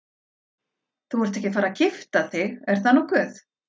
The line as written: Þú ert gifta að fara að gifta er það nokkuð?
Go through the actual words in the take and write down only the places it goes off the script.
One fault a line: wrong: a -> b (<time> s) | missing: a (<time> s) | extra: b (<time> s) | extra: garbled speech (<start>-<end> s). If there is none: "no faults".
wrong: gifta -> ekki (1.4 s)
extra: þig (2.4 s)